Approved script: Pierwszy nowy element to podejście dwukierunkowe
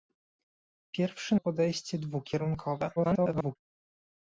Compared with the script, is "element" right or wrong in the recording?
wrong